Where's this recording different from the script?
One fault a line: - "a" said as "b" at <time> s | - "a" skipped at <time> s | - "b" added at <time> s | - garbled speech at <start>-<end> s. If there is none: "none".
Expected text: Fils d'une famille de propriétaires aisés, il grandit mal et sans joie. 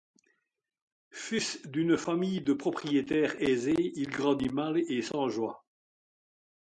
none